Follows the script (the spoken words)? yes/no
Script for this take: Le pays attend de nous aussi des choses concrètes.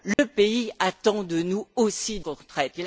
no